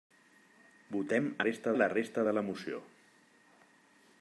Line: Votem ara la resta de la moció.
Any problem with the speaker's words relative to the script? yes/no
yes